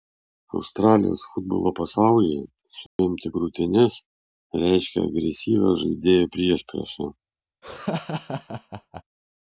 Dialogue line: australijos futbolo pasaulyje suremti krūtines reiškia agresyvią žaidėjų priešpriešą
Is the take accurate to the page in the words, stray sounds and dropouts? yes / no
no